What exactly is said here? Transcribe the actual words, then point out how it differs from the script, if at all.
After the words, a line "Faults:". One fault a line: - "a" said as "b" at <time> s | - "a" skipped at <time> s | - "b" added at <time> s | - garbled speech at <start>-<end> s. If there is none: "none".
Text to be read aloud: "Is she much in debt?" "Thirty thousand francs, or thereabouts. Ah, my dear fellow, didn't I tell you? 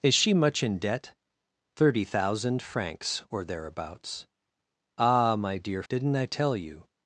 "Is she much in debt?" "Thirty thousand francs, or thereabouts. Ah, my dear didn't I tell you?
Faults:
- "fellow" skipped at 5.8 s